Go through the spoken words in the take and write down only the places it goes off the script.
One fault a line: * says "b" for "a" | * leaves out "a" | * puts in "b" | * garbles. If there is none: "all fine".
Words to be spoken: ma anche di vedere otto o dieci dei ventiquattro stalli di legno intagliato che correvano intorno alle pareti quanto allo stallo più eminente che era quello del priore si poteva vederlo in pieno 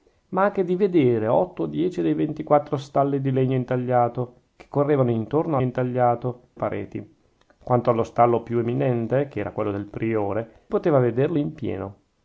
* says "intagliato" for "alle"
* leaves out "si"